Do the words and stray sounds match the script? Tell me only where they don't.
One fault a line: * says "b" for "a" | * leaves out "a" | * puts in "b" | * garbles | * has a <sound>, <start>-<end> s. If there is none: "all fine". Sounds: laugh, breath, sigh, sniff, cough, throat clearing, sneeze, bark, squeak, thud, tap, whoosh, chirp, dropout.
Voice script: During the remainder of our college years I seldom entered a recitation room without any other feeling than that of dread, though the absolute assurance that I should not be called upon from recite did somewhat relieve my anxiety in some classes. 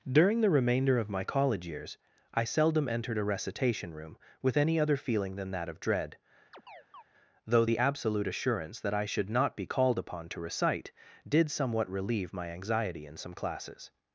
* says "my" for "our"
* says "with" for "without"
* has a chirp, 6.5-7.0 s
* says "to" for "from"